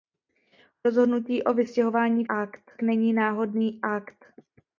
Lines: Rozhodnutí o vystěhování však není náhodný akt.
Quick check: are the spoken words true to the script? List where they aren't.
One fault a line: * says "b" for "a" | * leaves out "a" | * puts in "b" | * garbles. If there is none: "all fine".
* says "akt" for "však"